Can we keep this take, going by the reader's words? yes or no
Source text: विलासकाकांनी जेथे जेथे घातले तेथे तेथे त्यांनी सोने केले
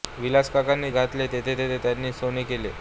no